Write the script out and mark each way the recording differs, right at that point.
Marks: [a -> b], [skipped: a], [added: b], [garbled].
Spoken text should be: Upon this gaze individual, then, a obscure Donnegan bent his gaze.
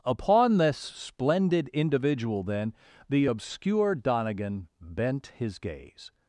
Upon this [gaze -> splendid] individual, then, [a -> the] obscure Donnegan bent his gaze.